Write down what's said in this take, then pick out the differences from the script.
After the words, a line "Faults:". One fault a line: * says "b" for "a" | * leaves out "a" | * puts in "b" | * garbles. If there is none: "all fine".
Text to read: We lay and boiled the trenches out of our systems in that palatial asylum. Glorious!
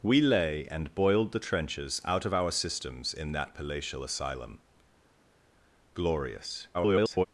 We lay and boiled the trenches out of our systems in that palatial asylum. Glorious! [garbled]
Faults:
* garbles